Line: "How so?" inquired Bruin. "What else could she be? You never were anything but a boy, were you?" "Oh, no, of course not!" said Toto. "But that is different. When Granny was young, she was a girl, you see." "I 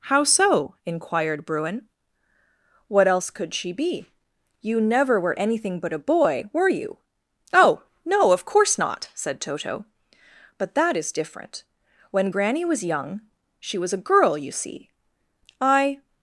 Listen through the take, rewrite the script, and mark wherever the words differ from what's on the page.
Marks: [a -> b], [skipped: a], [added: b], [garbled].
"How so?" inquired Bruin. "What else could she be? You never were anything but a boy, were you?" "Oh, no, of course not!" said Toto. "But that is different. When Granny was young, she was a girl, you see." "I